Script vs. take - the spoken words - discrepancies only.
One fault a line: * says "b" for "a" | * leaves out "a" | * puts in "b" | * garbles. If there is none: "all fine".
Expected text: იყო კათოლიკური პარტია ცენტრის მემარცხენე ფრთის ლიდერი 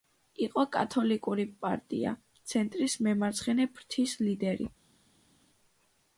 all fine